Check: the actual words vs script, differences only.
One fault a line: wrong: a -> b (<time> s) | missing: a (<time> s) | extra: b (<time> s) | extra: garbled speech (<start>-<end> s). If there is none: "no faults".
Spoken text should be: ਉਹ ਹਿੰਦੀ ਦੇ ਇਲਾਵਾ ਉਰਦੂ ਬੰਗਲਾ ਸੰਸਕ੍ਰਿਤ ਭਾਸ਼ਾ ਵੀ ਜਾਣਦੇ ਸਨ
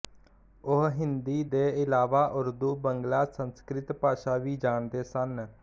no faults